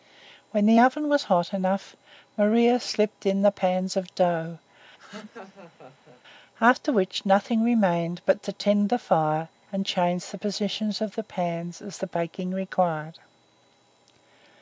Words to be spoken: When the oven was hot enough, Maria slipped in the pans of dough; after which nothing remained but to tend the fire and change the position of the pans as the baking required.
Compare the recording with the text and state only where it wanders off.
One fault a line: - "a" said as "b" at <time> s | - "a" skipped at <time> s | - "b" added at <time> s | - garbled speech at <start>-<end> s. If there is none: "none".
none